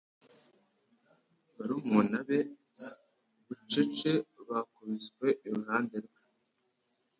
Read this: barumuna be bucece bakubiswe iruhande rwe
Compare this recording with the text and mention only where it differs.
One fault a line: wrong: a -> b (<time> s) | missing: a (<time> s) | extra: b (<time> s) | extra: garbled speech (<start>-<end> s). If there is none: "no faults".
no faults